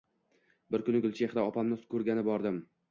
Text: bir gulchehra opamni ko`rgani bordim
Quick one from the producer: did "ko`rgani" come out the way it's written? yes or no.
yes